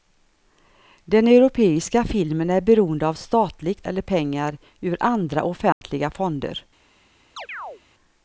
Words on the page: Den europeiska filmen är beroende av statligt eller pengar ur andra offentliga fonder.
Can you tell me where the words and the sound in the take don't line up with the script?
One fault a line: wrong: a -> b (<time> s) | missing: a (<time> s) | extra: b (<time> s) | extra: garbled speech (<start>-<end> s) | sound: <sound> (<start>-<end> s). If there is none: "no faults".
sound: dropout (5.7-5.8 s)
sound: chirp (7.4-7.8 s)